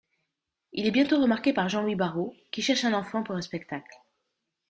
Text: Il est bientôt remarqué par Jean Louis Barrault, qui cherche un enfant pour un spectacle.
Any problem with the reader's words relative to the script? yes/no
no